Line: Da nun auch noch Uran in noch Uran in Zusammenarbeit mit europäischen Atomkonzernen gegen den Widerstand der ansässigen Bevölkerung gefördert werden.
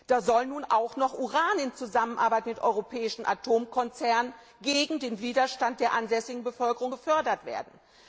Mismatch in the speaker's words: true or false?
true